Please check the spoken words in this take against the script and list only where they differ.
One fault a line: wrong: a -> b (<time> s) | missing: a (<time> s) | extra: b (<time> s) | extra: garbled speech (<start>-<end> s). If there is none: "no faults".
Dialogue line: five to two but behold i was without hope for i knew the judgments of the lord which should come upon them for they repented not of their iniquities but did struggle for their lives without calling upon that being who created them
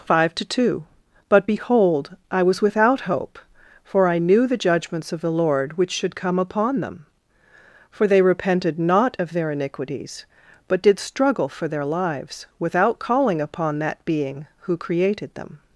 no faults